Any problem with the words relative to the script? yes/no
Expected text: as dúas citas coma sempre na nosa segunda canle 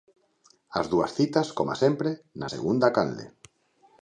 yes